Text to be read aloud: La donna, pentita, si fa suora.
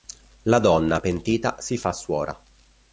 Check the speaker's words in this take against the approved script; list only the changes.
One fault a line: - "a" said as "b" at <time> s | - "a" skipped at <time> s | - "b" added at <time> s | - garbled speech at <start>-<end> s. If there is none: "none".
none